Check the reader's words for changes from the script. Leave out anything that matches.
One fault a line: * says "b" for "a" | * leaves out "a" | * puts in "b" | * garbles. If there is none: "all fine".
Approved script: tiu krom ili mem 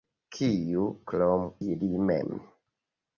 * says "kiu" for "tiu"